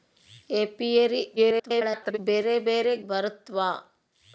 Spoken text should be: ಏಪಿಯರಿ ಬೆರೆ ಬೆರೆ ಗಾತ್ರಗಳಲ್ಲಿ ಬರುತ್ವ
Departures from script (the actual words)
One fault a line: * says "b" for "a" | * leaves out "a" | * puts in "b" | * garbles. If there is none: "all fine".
* garbles
* leaves out "ಗಾತ್ರಗಳಲ್ಲಿ"